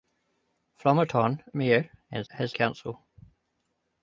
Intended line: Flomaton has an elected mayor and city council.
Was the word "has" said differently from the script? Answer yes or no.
yes